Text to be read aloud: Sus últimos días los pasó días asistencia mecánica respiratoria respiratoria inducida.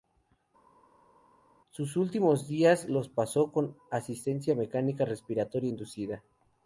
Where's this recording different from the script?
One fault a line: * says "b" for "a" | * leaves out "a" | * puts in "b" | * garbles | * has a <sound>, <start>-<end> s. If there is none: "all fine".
* says "con" for "días"
* leaves out "respiratoria"